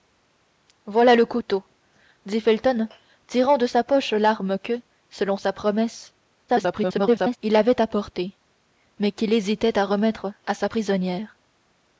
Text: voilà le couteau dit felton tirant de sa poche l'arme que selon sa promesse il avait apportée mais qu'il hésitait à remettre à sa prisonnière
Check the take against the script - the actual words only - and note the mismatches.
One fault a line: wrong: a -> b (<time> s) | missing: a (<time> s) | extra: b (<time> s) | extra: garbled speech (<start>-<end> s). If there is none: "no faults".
extra: garbled speech (6.5-7.4 s)